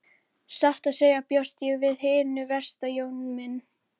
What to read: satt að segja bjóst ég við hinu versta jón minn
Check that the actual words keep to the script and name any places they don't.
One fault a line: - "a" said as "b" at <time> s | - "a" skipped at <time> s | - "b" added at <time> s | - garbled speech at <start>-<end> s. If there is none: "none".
none